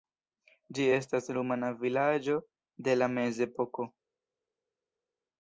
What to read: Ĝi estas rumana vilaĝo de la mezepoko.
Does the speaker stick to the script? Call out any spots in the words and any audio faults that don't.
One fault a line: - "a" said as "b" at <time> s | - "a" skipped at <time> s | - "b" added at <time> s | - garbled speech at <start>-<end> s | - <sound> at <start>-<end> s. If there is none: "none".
none